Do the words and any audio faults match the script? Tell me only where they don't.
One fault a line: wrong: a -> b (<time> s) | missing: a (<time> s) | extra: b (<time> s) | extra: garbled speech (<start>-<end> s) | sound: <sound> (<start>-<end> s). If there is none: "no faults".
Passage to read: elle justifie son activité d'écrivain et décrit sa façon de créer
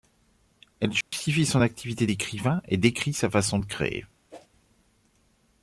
sound: dropout (1.0-1.1 s)
sound: whoosh (4.3-4.5 s)